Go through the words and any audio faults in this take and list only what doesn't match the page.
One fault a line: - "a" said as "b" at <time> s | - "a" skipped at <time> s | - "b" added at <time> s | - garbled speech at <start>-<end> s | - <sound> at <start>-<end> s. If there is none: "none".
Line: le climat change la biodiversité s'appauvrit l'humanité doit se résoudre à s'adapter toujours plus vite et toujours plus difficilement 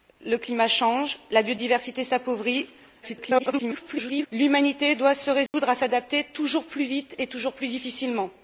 - garbled speech at 3.0-4.3 s
- dropout at 5.5-5.5 s